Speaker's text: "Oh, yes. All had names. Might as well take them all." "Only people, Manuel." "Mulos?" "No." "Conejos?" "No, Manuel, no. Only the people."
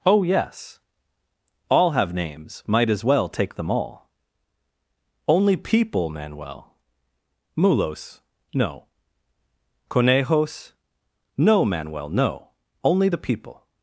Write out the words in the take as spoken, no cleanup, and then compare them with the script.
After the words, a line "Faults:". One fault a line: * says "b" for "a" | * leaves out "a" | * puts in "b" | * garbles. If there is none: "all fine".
"Oh, yes. All have names. Might as well take them all." "Only people, Manuel." "Mulos?" "No." "Conejos?" "No, Manuel, no. Only the people."
Faults:
* says "have" for "had"